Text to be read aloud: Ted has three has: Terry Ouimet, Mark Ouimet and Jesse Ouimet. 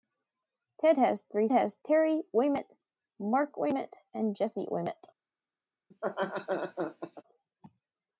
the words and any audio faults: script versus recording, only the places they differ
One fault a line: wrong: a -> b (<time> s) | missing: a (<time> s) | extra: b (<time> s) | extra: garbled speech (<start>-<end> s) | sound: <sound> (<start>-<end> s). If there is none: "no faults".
sound: laugh (5.9-7.2 s)